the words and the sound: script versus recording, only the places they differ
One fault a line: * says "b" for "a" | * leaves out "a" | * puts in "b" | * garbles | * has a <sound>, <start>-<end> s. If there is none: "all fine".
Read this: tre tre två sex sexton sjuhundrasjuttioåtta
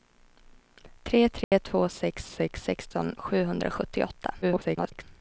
* has a dropout, 1.4-1.5 s
* puts in "sex"
* garbles